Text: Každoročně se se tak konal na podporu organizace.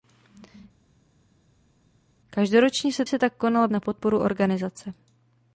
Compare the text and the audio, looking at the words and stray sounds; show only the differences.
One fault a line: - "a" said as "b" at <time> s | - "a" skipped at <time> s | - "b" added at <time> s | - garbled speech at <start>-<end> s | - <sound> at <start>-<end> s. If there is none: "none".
none